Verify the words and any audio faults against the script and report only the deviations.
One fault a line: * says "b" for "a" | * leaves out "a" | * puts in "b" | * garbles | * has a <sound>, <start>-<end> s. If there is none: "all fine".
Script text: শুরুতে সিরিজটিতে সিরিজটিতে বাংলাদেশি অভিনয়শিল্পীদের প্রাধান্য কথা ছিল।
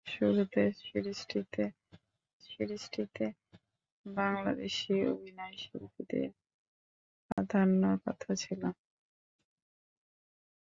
* has a dropout, 7.3-7.4 s